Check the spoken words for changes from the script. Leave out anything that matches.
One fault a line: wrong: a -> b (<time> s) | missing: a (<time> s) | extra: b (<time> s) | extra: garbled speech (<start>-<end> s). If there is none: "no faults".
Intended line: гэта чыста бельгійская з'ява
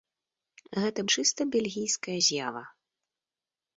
no faults